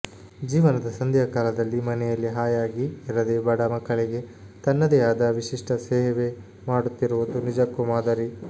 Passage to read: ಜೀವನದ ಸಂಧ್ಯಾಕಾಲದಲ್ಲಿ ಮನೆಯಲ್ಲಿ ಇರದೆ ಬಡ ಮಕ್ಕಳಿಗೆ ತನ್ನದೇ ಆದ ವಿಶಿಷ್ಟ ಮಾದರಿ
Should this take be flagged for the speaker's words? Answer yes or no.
yes